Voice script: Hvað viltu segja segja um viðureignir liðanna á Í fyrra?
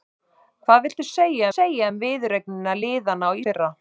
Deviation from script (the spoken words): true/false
false